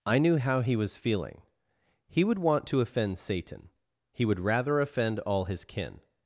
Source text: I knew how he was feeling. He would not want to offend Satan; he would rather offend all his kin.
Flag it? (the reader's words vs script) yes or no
yes